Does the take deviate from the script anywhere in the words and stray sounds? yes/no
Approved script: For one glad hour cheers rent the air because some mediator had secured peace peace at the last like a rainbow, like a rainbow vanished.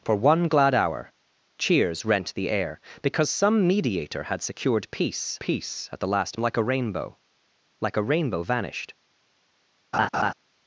yes